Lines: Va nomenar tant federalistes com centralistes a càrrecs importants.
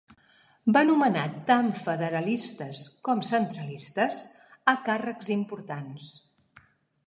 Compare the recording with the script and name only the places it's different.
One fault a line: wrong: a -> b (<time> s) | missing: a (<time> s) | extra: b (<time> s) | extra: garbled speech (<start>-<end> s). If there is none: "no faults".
no faults